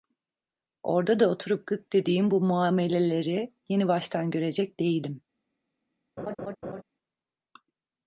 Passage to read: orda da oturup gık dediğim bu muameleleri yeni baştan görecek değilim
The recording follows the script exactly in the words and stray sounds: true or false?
false